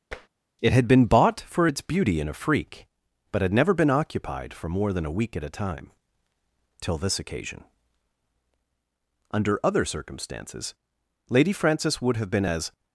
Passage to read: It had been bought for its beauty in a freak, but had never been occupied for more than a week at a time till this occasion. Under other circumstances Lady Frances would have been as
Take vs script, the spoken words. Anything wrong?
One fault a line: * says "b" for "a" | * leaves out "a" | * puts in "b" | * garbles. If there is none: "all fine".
all fine